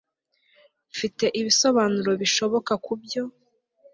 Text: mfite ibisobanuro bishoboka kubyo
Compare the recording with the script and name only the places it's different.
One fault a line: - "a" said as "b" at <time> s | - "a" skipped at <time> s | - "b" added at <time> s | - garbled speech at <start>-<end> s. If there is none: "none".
none